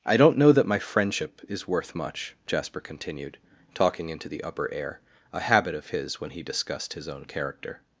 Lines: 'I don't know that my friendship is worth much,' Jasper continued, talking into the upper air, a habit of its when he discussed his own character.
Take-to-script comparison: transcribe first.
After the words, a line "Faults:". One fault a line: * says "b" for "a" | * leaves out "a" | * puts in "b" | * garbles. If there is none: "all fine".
'I don't know that my friendship is worth much,' Jasper continued, talking into the upper air, a habit of his when he discussed his own character.
Faults:
* says "his" for "its"